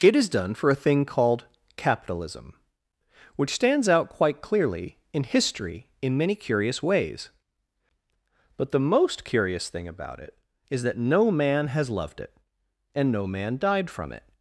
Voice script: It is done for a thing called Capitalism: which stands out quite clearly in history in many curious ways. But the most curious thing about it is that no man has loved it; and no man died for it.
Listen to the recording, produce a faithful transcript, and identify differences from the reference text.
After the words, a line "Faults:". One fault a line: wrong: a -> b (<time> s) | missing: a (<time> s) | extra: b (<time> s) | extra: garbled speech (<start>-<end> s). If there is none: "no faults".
It is done for a thing called Capitalism: which stands out quite clearly in history in many curious ways. But the most curious thing about it is that no man has loved it; and no man died from it.
Faults:
wrong: for -> from (13.9 s)